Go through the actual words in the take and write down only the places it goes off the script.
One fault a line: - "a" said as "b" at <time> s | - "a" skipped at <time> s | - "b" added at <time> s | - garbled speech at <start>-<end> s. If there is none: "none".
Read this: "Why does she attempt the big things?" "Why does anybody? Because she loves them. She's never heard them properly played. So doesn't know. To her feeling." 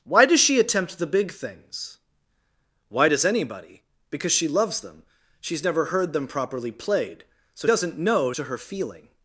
none